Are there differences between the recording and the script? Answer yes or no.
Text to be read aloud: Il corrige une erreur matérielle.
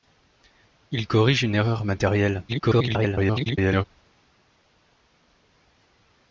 yes